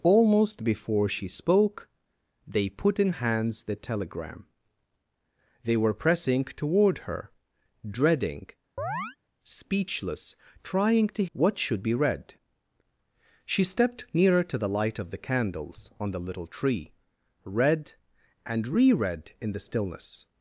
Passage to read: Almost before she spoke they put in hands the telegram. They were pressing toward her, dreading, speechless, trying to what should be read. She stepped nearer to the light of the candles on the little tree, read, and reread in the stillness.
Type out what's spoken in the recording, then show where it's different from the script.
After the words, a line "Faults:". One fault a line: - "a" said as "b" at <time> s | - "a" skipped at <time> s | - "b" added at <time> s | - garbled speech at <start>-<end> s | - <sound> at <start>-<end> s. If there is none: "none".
Almost before she spoke they put in hands the telegram. They were pressing toward her, dreading, speechless, trying to what should be read. She stepped nearer to the light of the candles on the little tree, read, and reread in the stillness.
Faults:
- chirp at 8.8-9.2 s